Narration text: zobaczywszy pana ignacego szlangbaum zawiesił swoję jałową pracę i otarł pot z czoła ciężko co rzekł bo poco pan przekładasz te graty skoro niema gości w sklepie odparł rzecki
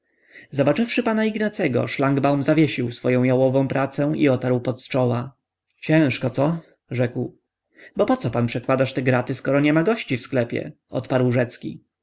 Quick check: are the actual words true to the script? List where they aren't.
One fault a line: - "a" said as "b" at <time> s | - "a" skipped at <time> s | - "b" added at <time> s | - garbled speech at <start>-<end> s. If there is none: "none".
none